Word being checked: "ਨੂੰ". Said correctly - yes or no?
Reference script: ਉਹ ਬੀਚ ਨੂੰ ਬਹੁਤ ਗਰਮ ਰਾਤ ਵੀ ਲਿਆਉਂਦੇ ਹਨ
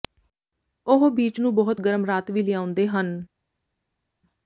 yes